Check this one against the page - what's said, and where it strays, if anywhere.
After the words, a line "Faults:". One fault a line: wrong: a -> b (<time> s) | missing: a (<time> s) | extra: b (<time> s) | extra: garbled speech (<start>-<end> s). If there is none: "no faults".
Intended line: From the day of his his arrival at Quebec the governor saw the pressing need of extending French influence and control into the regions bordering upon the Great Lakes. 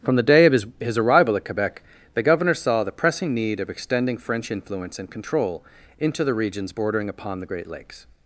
From the day of his his arrival at Quebec the governor saw the pressing need of extending French influence and control into the regions bordering upon the Great Lakes.
Faults:
no faults